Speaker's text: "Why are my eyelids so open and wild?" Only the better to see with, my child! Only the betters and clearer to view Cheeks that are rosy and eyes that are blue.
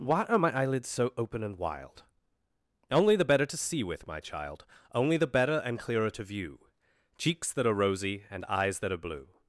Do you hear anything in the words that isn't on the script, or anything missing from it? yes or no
yes